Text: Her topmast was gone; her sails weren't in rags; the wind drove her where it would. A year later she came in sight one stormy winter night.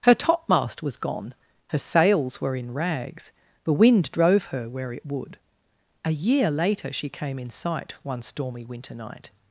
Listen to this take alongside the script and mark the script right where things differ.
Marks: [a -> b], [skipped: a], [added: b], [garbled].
Her topmast was gone; her sails [weren't -> were] in rags; the wind drove her where it would. A year later she came in sight one stormy winter night.